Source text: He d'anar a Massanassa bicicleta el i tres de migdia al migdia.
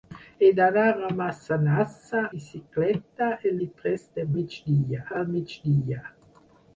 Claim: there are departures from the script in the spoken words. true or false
false